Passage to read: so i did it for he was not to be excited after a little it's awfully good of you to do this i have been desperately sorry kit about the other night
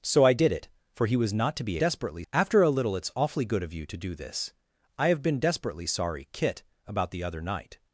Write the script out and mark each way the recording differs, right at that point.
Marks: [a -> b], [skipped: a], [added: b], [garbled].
so i did it for he was not to be [excited -> desperately] after a little it's awfully good of you to do this i have been desperately sorry kit about the other night